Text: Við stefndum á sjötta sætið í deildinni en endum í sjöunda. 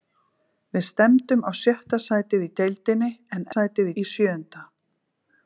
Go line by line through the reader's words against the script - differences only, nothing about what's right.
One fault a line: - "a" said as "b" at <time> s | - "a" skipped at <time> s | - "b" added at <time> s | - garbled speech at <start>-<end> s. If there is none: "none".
- "endum" said as "sætið" at 3.5 s